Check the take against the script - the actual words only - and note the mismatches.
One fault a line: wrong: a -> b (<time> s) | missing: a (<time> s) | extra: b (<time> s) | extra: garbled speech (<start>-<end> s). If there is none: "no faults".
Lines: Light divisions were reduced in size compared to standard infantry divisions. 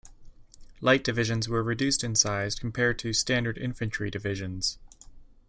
no faults